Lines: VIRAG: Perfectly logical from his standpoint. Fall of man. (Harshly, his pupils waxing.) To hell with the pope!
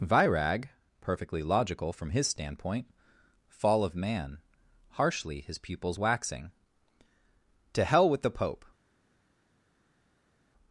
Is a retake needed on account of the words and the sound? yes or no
no